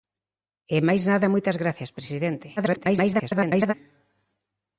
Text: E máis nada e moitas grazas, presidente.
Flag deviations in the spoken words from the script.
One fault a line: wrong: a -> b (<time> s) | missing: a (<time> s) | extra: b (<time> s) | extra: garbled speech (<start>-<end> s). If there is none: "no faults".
extra: garbled speech (2.6-3.7 s)